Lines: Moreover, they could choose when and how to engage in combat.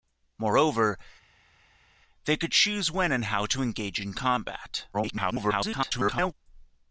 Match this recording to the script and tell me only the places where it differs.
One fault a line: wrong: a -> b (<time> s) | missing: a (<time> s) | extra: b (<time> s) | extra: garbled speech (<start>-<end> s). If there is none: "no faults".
extra: garbled speech (4.9-6.3 s)